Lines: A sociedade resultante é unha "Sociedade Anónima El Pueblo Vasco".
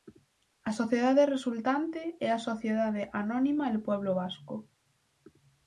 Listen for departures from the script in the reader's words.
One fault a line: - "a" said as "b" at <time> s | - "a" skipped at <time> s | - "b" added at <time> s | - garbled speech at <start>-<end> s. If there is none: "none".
- "unha" said as "a" at 2.3 s